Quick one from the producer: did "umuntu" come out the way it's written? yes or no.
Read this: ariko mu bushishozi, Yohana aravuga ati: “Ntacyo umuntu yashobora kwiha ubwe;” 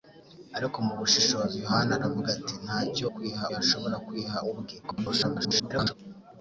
no